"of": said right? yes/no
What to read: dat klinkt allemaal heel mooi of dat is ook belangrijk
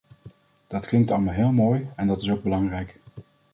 no